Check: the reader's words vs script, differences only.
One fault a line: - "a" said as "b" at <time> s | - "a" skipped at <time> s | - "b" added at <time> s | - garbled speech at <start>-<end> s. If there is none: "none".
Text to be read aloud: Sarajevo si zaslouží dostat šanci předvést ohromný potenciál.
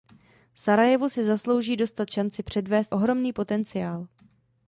none